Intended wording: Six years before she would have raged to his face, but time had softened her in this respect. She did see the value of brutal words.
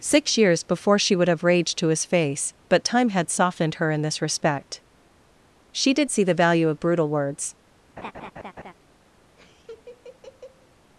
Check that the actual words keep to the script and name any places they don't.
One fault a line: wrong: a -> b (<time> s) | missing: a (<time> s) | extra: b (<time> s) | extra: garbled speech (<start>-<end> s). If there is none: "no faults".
no faults